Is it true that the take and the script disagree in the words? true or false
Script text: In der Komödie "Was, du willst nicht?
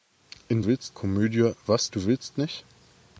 true